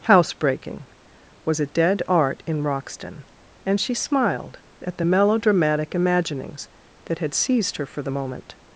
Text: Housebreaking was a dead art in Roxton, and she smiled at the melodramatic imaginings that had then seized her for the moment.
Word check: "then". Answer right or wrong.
wrong